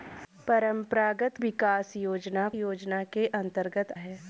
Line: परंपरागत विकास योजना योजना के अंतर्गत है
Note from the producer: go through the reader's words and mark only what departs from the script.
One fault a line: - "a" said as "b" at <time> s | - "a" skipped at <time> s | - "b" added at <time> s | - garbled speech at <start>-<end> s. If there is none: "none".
none